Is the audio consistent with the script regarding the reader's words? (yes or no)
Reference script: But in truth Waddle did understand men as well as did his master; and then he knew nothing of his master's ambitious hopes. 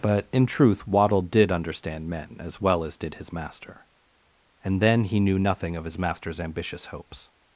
yes